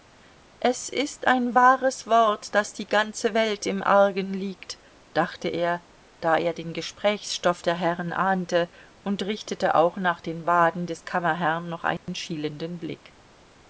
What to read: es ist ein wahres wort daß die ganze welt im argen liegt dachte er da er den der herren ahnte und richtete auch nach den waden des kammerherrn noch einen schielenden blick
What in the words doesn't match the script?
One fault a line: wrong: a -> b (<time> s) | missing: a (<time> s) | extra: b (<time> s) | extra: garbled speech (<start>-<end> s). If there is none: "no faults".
extra: gesprächsstoff (6.7 s)